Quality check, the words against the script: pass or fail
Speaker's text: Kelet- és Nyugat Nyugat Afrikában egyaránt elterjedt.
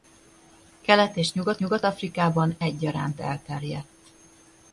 pass